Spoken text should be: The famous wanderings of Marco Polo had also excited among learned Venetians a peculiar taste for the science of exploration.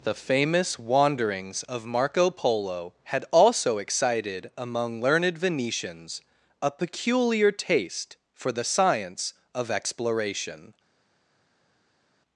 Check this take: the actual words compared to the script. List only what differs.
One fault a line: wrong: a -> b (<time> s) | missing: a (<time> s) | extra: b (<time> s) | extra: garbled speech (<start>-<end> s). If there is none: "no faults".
no faults